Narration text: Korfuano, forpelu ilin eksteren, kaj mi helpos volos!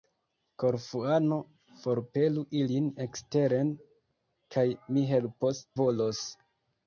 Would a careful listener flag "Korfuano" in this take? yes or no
no